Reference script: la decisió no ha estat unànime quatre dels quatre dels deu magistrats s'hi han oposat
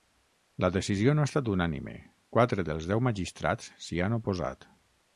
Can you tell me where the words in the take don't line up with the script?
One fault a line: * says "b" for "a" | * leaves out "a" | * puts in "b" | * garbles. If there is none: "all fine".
* leaves out "quatre dels"